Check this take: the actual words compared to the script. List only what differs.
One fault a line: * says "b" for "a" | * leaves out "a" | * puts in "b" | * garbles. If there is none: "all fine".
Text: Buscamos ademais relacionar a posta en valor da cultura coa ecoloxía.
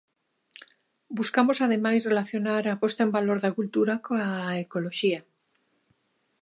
all fine